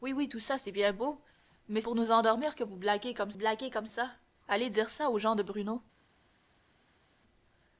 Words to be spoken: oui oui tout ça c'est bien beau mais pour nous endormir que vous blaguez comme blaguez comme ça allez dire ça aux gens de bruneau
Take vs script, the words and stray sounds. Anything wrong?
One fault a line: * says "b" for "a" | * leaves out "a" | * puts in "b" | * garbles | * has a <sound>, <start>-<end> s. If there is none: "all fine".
all fine